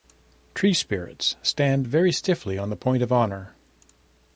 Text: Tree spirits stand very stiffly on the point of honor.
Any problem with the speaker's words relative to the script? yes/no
no